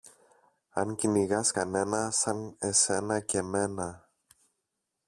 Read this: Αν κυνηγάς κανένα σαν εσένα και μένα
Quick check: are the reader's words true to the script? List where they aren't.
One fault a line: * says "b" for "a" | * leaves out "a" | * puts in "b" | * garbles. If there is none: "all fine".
all fine